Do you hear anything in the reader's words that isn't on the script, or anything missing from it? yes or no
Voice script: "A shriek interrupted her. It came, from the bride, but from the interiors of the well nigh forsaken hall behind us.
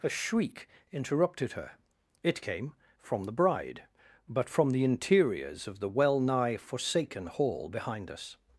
no